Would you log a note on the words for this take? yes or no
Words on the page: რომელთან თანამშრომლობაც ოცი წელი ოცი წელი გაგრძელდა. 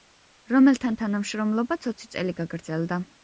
yes